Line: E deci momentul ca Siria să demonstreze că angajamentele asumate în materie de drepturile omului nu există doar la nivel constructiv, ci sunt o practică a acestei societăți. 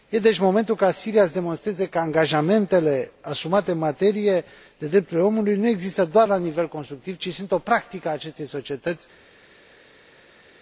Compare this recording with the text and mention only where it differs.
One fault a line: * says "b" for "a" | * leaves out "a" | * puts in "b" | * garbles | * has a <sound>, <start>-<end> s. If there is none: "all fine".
all fine